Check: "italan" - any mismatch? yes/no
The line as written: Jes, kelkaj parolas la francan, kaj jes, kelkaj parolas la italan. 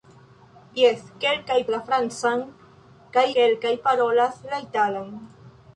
no